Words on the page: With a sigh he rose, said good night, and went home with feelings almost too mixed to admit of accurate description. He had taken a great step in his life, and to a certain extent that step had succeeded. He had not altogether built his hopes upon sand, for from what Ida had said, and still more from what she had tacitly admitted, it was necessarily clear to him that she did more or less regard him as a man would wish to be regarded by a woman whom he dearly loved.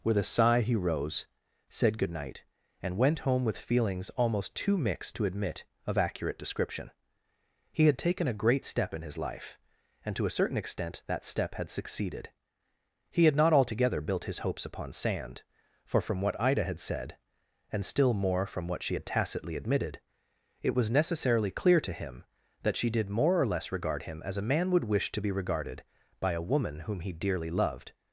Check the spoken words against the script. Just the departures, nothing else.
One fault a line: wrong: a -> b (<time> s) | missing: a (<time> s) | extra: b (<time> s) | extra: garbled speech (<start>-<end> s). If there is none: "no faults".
no faults